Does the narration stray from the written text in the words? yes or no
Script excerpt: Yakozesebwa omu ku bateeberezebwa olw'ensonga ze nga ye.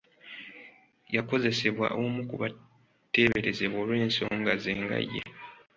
no